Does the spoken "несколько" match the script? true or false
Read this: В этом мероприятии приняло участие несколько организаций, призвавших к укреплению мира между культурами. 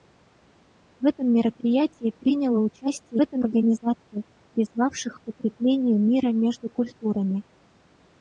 false